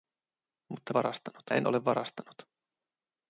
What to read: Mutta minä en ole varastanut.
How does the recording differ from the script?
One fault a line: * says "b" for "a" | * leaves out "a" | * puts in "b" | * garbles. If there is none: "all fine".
* says "varastanut" for "minä"